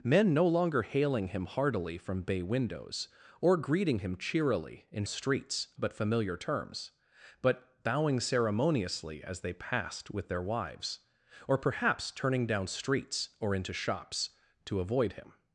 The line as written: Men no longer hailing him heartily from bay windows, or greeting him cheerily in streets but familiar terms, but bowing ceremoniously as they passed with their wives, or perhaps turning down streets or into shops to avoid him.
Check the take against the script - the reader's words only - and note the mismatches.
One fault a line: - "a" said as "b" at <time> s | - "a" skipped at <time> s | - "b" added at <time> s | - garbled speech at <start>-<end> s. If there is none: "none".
none